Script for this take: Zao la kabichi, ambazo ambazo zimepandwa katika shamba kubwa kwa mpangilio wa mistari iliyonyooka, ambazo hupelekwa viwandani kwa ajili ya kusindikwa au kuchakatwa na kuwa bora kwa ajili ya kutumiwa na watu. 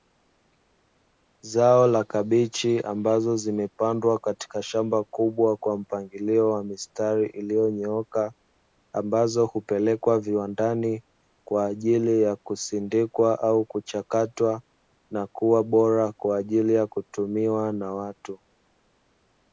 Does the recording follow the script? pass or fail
fail